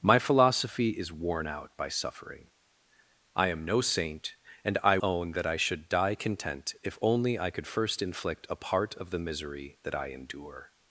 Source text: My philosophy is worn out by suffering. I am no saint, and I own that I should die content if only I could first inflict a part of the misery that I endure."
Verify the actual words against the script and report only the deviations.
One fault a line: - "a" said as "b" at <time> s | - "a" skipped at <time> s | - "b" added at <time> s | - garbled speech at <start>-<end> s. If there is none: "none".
none